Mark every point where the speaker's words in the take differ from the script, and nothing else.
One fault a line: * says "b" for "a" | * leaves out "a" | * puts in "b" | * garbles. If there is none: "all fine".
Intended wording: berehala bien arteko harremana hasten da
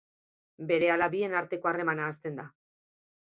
all fine